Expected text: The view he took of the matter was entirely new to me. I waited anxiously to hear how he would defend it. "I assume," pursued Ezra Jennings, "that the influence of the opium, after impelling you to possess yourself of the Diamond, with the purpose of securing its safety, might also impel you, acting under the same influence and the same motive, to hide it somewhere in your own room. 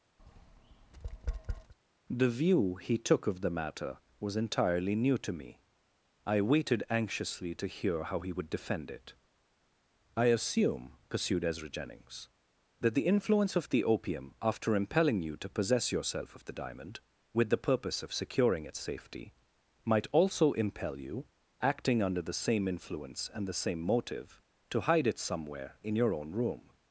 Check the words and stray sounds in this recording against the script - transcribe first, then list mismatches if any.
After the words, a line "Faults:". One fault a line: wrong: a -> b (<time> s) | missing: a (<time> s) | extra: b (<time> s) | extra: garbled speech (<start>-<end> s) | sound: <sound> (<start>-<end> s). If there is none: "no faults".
The view he took of the matter was entirely new to me. I waited anxiously to hear how he would defend it. "I assume," pursued Ezra Jennings, "that the influence of the opium, after impelling you to possess yourself of the Diamond, with the purpose of securing its safety, might also impel you, acting under the same influence and the same motive, to hide it somewhere in your own room.
Faults:
sound: tap (0.2-1.7 s)